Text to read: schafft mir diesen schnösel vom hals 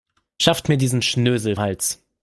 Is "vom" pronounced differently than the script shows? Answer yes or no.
yes